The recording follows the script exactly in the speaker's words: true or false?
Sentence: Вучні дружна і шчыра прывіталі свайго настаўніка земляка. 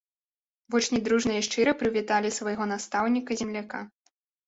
true